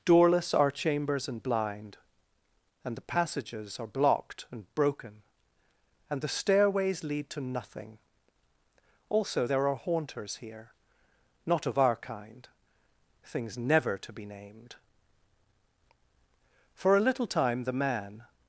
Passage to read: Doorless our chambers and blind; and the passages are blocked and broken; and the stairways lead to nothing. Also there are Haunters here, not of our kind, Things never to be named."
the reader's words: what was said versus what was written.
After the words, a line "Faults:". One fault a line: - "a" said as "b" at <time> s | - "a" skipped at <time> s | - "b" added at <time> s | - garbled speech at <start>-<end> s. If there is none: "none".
Doorless our chambers and blind; and the passages are blocked and broken; and the stairways lead to nothing. Also there are Haunters here, not of our kind, Things never to be named." For a little time the Man
Faults:
- "For a little time the Man" added at 16.8 s